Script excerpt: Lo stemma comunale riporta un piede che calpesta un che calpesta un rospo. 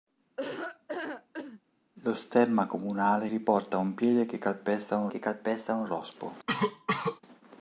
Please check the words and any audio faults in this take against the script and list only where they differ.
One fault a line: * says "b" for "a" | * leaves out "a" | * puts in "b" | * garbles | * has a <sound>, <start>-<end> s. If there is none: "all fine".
* has a laugh, 0.4-1.6 s
* has a cough, 6.5-7.2 s